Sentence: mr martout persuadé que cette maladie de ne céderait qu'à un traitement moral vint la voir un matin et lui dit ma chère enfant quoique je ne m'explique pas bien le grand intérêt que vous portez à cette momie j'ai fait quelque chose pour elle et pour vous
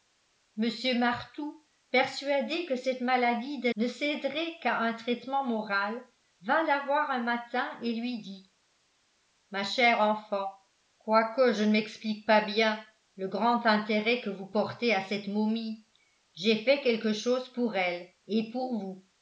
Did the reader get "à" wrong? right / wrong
right